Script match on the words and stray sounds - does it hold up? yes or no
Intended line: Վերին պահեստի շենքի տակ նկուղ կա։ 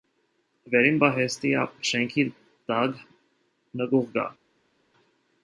yes